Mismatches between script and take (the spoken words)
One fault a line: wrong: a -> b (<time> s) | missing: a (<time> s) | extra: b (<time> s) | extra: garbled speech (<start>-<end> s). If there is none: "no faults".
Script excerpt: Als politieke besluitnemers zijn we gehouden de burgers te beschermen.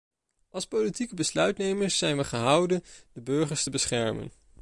no faults